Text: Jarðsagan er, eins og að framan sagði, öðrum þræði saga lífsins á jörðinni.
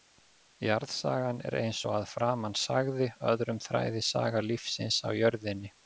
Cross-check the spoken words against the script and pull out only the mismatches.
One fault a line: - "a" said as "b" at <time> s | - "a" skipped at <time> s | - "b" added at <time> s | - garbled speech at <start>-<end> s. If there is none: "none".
none